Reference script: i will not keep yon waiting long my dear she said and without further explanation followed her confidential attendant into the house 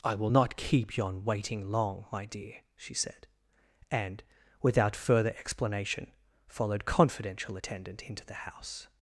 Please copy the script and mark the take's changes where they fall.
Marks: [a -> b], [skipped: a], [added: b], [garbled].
i will not keep yon waiting long my dear she said and without further explanation followed [skipped: her] confidential attendant into the house